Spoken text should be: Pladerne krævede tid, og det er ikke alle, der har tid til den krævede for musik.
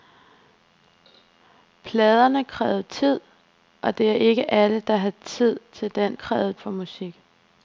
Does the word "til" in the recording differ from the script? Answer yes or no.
no